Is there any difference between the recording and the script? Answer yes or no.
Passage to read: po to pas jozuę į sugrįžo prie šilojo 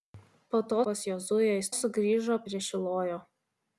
no